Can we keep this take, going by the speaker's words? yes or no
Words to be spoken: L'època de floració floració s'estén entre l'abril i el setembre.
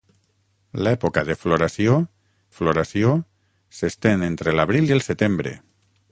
yes